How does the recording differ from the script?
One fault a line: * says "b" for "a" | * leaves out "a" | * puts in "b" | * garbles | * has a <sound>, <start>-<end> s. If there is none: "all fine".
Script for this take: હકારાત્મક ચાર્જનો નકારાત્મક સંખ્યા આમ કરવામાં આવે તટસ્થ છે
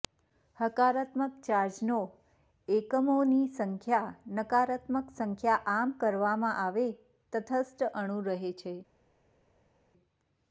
* puts in "એકમોની સંખ્યા"
* puts in "અણુ રહે"